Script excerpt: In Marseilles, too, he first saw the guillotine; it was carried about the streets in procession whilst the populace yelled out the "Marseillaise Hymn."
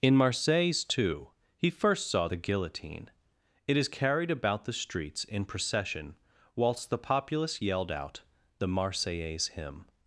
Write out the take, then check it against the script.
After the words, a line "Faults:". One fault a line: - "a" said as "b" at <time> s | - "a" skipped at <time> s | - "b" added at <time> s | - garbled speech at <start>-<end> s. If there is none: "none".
In Marseilles, too, he first saw the guillotine; it is carried about the streets in procession whilst the populace yelled out the "Marseillaise Hymn."
Faults:
- "was" said as "is" at 3.7 s